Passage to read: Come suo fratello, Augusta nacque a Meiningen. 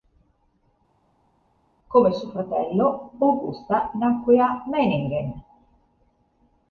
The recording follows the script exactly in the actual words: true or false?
true